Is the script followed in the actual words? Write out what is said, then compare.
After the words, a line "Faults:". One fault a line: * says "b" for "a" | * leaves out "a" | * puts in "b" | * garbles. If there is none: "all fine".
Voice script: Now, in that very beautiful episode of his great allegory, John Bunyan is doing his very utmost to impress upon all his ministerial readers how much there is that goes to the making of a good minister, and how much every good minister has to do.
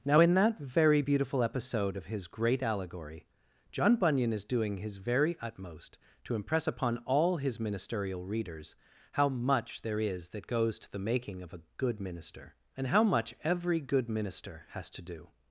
Now, in that very beautiful episode of his great allegory, John Bunyan is doing his very utmost to impress upon all his ministerial readers how much there is that goes to the making of a good minister, and how much every good minister has to do.
Faults:
all fine